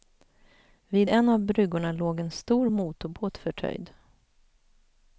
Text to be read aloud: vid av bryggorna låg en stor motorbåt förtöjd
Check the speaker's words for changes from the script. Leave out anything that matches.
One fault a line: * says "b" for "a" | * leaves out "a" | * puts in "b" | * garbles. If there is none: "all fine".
* puts in "en"